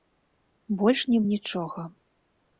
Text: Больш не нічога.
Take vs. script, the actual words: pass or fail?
pass